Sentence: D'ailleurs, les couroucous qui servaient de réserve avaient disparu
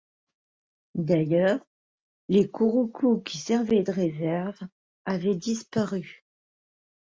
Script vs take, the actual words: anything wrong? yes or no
no